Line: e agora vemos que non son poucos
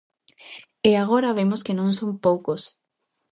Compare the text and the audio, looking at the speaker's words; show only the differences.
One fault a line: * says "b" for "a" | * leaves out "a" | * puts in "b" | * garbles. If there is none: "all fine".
all fine